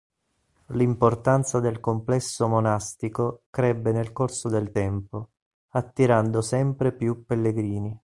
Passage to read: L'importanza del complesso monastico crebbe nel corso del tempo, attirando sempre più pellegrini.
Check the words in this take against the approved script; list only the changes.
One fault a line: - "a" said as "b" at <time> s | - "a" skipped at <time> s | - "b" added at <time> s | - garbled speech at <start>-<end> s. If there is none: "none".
none